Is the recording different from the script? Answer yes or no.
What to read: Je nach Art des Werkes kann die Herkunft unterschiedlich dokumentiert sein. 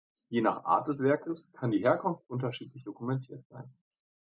no